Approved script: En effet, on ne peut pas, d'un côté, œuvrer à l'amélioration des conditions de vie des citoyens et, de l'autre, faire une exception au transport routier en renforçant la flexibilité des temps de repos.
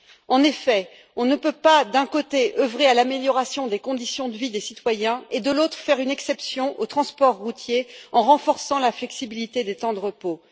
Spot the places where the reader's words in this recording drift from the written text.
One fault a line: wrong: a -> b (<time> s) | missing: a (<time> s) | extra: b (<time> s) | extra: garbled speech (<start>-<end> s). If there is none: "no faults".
no faults